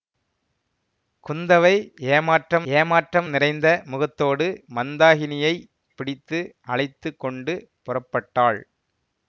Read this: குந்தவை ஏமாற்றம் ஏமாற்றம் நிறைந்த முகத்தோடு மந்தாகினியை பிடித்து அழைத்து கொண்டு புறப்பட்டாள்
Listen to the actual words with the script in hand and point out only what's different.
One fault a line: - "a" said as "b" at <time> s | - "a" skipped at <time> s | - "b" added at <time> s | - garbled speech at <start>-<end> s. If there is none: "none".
none